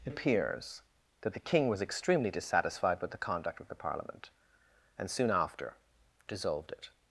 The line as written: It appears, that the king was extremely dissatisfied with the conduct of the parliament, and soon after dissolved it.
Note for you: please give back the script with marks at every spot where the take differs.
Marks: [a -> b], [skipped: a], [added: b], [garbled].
It appears, that the king was extremely dissatisfied with the conduct of the parliament, and soon after dissolved it.